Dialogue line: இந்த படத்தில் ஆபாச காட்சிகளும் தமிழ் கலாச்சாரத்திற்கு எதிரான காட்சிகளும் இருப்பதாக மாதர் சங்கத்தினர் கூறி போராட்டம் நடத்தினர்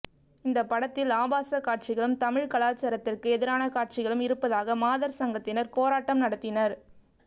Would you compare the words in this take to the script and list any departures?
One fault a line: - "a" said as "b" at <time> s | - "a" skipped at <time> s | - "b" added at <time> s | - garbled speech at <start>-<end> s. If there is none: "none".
- "கூறி" skipped at 5.7 s